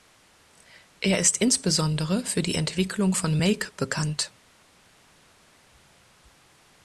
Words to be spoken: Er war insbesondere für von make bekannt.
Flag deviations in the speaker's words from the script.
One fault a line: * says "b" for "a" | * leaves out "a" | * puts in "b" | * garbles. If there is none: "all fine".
* says "ist" for "war"
* puts in "die Entwicklung"